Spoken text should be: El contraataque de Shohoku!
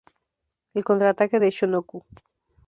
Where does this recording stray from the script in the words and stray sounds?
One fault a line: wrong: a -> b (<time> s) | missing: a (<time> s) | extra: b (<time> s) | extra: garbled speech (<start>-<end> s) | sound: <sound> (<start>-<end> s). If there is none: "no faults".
no faults